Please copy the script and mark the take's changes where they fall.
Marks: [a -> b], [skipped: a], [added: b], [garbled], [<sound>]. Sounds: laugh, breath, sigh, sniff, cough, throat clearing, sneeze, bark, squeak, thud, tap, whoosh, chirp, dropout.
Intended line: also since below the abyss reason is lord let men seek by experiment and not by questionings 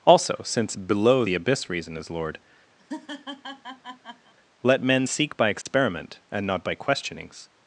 also since below the abyss reason is lord [laugh] let men seek by experiment [dropout] and not by questionings